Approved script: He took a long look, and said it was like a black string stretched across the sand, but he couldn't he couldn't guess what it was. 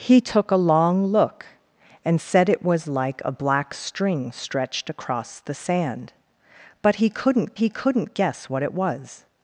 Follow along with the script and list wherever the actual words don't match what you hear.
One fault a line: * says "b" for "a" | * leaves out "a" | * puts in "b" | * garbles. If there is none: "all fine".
all fine